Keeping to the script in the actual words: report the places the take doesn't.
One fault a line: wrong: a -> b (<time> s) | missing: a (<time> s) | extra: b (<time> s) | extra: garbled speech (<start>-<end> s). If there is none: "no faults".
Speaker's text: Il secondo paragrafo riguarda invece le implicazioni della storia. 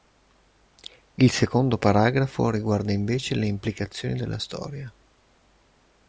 no faults